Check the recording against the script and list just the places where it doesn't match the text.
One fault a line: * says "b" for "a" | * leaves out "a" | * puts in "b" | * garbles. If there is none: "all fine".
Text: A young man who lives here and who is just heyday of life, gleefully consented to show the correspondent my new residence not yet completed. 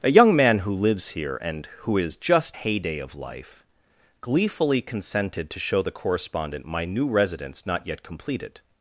all fine